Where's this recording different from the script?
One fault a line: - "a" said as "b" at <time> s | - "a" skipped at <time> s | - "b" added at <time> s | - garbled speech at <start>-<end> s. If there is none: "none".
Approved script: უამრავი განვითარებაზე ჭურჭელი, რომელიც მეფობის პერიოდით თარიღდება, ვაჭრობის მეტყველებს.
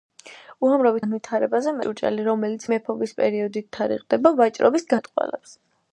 none